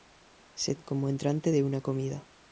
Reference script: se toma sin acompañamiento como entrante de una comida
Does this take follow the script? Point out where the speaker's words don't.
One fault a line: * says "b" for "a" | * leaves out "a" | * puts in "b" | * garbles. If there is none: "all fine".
* leaves out "toma sin acompañamiento"